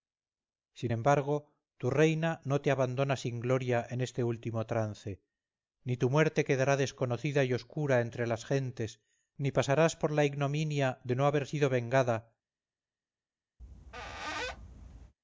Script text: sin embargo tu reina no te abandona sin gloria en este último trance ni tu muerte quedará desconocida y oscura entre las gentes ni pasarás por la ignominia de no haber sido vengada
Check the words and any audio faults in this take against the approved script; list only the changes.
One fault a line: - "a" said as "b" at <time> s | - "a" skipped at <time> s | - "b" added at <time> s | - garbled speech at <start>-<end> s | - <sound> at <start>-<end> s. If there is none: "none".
- squeak at 13.6-15.1 s